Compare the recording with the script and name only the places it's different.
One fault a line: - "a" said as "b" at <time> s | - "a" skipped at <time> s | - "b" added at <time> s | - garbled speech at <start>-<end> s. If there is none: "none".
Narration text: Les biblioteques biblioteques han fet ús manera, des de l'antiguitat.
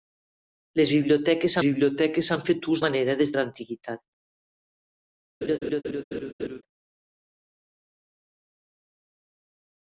none